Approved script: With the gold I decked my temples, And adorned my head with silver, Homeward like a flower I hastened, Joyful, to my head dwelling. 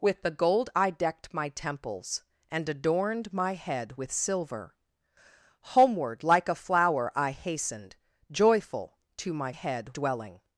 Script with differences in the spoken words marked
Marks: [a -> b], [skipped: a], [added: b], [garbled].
With the gold I decked my temples, And adorned my head with silver, Homeward like a flower I hastened, Joyful, to my head dwelling.